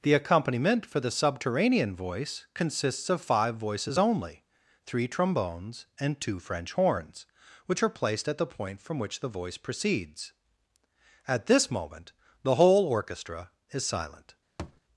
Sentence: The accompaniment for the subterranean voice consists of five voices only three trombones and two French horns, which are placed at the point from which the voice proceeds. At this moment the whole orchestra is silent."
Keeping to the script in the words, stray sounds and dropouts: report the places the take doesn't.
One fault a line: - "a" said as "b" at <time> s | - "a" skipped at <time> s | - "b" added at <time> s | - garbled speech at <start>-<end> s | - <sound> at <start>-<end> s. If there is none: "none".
- thud at 14.6-14.8 s